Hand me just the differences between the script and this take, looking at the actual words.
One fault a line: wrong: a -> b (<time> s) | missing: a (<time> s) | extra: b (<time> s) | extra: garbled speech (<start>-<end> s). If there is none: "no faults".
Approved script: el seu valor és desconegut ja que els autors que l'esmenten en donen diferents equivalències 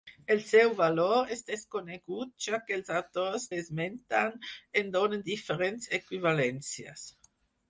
missing: que (3.5 s)